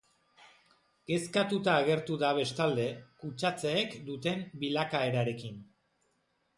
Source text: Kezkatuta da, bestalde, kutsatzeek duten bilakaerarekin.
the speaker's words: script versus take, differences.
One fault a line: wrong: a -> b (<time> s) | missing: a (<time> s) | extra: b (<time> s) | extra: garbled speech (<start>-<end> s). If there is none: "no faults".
extra: agertu (1.8 s)